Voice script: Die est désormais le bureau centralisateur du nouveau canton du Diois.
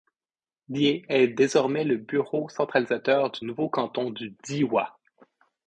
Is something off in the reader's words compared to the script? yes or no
no